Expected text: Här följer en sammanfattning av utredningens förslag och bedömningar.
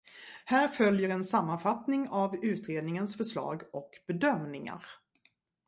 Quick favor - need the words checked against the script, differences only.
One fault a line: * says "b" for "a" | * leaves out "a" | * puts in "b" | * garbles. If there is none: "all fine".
all fine